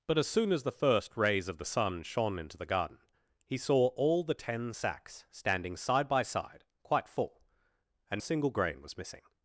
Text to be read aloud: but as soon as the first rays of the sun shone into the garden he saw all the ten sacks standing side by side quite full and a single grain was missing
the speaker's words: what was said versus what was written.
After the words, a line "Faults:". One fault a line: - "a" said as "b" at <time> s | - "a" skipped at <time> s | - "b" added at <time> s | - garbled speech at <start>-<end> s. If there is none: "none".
but as soon as the first rays of the sun shone into the garden he saw all the ten sacks standing side by side quite full and a single grain was missing
Faults:
none